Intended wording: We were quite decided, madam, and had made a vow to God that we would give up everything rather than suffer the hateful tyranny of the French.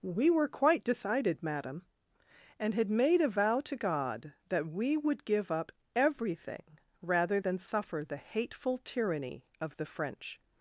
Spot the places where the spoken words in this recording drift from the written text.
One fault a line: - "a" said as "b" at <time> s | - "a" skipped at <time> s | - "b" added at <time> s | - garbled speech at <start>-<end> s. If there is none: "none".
none